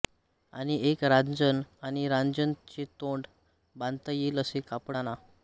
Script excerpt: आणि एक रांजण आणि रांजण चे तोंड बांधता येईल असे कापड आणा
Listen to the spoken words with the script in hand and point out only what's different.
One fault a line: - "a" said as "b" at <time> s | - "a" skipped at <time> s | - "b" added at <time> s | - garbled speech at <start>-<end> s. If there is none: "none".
none